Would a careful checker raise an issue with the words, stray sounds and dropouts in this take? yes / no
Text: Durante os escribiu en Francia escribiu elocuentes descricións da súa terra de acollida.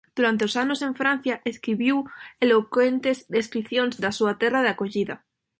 yes